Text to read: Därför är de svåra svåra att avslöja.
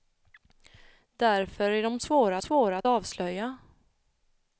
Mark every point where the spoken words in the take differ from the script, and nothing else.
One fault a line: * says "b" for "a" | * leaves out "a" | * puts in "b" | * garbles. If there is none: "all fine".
all fine